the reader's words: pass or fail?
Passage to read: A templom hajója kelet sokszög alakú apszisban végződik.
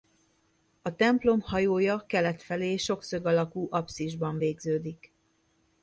fail